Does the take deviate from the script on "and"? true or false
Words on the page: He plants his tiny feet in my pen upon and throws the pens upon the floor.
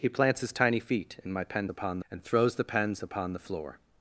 false